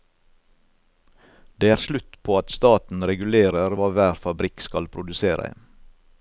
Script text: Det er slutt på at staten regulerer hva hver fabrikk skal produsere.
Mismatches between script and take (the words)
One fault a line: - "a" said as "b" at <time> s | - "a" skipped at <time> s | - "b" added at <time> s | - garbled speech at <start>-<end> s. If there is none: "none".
none